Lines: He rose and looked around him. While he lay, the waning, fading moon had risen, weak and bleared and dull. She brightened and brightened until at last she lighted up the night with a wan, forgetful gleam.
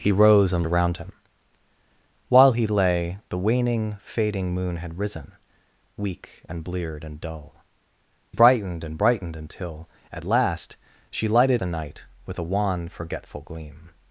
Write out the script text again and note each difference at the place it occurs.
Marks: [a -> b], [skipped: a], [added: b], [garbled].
He rose and [skipped: looked] around him. While he lay, the waning, fading moon had risen, weak and bleared and dull. [skipped: She] brightened and brightened until at last she lighted [skipped: up] the night with a wan, forgetful gleam.